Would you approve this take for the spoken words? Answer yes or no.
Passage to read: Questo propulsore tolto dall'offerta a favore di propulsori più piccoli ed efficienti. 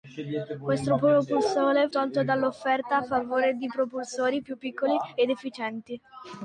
yes